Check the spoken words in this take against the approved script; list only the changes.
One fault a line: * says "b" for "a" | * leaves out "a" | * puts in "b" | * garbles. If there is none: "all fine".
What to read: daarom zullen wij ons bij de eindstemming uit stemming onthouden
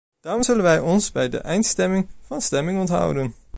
* says "van" for "uit"